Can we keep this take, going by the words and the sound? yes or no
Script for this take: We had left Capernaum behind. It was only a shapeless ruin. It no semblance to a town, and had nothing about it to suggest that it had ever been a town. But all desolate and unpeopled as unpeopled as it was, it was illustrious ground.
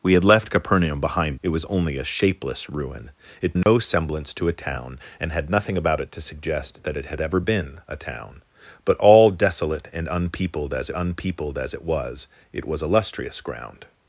no